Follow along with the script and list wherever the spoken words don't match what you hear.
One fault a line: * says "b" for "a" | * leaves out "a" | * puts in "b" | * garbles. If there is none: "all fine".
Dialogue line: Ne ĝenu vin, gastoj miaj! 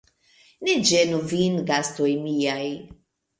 all fine